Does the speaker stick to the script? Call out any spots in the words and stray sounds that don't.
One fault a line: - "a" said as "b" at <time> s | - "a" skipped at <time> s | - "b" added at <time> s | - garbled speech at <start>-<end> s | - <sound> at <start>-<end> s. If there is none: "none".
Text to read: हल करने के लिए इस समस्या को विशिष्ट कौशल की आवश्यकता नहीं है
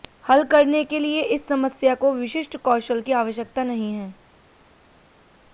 none